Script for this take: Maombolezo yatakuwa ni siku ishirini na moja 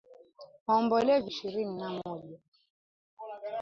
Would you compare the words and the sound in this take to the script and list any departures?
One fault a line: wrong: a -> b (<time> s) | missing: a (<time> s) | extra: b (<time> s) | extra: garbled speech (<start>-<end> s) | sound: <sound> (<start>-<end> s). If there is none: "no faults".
missing: yatakuwa ni siku (1.3 s)